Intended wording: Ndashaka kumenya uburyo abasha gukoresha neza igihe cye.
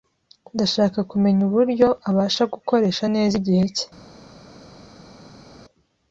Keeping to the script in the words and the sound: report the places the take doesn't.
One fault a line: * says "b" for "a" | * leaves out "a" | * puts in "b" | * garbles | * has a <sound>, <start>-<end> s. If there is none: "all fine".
all fine